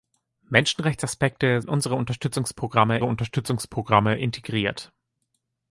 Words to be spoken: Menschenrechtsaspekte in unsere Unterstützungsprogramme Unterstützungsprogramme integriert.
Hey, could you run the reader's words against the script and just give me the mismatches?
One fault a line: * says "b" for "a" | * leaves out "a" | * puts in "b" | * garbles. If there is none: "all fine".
all fine